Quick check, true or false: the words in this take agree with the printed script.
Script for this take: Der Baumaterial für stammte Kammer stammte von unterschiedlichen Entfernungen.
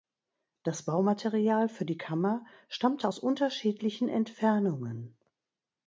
false